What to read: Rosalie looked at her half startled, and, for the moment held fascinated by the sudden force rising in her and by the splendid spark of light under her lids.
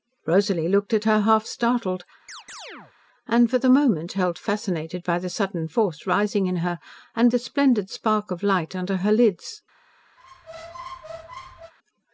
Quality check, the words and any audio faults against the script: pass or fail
fail